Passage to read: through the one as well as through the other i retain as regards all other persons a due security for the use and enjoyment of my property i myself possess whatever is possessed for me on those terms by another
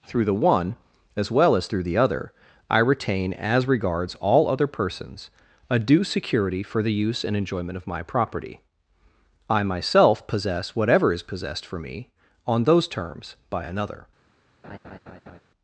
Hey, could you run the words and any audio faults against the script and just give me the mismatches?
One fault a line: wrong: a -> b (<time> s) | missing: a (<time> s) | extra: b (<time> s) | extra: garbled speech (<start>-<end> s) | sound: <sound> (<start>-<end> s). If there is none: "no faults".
sound: laugh (14.6-15.4 s)